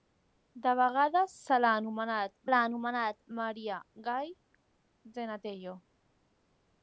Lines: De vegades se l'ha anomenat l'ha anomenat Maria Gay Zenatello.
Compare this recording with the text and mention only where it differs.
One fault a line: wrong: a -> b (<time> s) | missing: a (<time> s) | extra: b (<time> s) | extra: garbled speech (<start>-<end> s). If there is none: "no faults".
no faults